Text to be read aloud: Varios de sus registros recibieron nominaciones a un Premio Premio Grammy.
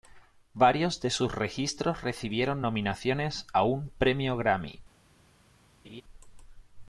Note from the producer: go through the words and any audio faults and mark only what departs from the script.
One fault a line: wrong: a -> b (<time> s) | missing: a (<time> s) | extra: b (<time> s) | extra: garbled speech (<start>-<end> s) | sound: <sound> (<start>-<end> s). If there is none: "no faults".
missing: Premio (4.4 s)
sound: laugh (5.8-6.0 s)